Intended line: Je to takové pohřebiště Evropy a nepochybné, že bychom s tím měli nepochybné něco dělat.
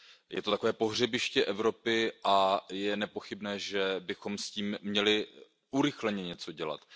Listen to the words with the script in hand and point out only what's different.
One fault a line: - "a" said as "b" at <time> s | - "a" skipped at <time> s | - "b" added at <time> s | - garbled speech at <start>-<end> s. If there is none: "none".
- "je" added at 2.7 s
- "nepochybné" said as "urychleně" at 5.7 s